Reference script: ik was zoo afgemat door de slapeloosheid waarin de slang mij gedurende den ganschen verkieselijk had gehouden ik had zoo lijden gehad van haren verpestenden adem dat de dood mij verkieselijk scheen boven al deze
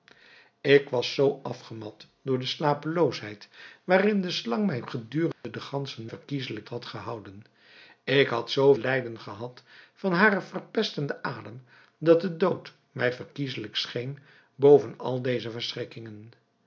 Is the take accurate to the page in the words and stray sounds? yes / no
no